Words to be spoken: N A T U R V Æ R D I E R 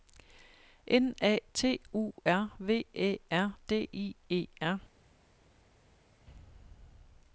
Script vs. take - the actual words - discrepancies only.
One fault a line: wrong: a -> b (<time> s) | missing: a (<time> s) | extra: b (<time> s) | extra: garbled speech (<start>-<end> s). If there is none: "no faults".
no faults